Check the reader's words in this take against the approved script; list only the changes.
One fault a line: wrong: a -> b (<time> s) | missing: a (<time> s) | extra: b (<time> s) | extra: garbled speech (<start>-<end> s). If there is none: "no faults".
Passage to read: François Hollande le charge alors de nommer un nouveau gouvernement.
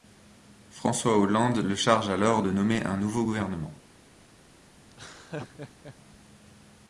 no faults